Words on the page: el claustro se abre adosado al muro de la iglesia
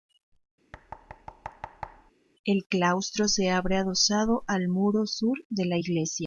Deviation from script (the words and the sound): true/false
true